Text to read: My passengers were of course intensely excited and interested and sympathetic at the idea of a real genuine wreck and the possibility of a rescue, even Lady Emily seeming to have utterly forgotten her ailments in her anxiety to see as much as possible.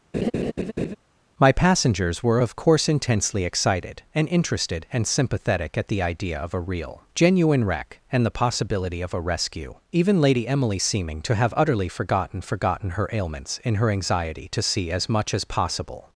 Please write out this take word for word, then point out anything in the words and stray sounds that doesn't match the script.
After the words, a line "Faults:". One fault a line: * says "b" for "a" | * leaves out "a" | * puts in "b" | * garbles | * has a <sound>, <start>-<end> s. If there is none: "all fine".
My passengers were of course intensely excited and interested and sympathetic at the idea of a real genuine wreck and the possibility of a rescue, even Lady Emily seeming to have utterly forgotten forgotten her ailments in her anxiety to see as much as possible.
Faults:
* has a laugh, 0.1-1.0 s
* puts in "forgotten"